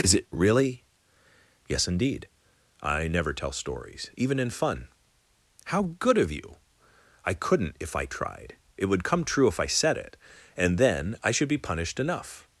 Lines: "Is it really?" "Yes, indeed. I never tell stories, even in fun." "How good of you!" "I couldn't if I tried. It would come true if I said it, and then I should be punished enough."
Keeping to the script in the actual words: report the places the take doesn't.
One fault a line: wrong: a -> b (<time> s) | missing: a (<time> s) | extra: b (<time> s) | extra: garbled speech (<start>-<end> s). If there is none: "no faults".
no faults